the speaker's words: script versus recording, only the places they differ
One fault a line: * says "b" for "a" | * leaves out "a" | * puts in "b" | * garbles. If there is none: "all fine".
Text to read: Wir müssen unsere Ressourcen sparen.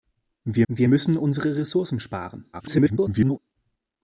* puts in "wir"
* garbles